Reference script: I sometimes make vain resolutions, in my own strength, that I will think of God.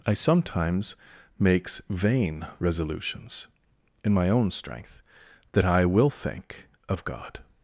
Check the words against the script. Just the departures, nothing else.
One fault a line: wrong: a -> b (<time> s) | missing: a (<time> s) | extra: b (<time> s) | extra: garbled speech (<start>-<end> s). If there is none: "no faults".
wrong: make -> makes (1.4 s)